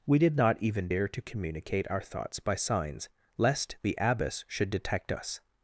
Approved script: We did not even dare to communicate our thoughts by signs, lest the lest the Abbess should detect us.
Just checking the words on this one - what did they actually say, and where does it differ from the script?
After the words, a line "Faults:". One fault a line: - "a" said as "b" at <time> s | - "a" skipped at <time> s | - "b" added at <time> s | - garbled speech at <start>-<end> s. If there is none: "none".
We did not even dare to communicate our thoughts by signs, lest the Abbess should detect us.
Faults:
- "lest the" skipped at 4.0 s